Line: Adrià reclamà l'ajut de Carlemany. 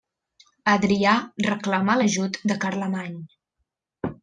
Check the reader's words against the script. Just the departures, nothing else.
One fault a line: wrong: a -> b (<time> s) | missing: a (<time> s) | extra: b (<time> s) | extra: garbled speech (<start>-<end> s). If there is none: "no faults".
no faults